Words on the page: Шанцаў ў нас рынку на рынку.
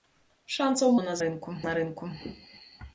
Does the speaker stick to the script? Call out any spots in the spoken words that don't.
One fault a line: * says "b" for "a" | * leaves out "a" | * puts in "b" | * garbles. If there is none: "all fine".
all fine